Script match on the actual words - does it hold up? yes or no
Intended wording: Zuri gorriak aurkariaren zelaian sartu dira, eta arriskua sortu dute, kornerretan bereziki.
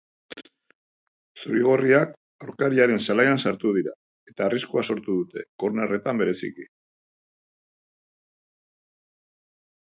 yes